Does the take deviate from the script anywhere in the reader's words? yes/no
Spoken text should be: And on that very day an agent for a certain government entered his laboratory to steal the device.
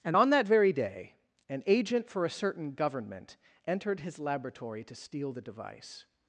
no